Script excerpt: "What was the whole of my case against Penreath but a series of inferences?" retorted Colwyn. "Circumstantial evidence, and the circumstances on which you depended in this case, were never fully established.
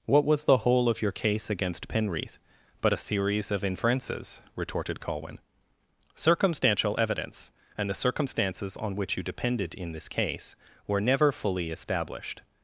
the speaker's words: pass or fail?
fail